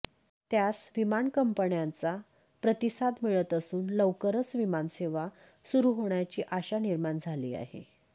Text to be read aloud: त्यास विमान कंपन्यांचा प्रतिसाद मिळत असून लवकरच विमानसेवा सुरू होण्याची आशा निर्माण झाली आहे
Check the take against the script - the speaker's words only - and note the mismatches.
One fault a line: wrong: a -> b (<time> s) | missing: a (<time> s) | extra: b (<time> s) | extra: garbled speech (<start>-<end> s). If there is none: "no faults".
no faults